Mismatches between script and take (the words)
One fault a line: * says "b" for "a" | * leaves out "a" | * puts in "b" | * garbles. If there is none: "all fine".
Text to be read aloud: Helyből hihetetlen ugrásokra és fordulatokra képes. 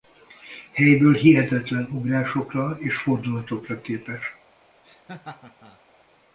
all fine